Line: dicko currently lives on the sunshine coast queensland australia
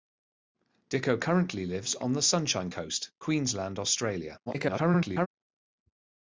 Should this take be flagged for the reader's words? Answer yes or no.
yes